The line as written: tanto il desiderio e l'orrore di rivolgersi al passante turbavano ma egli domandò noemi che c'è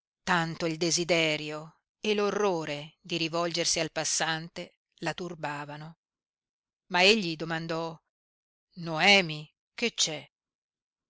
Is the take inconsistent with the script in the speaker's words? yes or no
yes